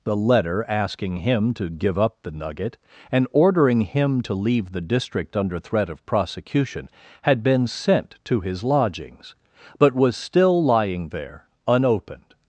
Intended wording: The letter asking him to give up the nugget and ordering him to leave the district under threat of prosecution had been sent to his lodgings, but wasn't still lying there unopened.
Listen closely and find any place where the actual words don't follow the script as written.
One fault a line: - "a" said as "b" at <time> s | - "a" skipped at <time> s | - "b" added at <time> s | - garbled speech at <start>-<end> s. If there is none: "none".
- "wasn't" said as "was" at 9.9 s